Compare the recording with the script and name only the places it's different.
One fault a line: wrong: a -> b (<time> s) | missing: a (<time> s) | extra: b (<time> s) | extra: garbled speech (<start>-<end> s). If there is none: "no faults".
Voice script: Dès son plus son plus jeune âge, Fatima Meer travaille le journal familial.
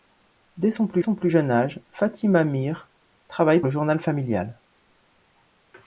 no faults